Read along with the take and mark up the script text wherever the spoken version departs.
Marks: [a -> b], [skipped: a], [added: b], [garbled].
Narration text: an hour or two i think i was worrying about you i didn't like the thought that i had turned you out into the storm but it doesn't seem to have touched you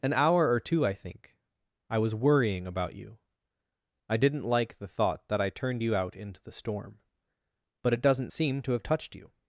an hour or two i think i was worrying about you i didn't like the thought that i [skipped: had] turned you out into the storm but it doesn't seem to have touched you